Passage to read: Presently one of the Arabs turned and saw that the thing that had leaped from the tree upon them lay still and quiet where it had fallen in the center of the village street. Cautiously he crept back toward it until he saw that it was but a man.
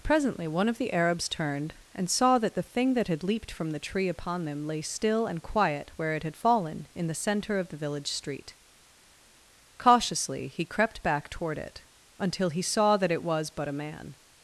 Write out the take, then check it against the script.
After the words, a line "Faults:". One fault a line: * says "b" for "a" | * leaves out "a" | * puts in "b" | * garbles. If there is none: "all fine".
Presently one of the Arabs turned and saw that the thing that had leaped from the tree upon them lay still and quiet where it had fallen in the center of the village street. Cautiously he crept back toward it until he saw that it was but a man.
Faults:
all fine